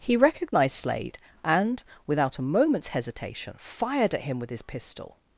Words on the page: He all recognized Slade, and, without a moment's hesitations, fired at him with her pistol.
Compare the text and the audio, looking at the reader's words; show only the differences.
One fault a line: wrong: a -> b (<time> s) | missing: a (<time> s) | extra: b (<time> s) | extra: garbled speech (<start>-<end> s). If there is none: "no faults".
missing: all (0.2 s)
wrong: hesitations -> hesitation (2.9 s)
wrong: her -> his (4.5 s)